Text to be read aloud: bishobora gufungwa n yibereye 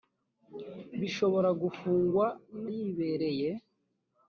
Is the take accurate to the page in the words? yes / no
yes